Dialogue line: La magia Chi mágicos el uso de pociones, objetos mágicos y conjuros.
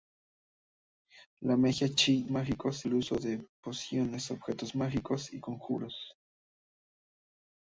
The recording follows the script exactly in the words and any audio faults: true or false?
true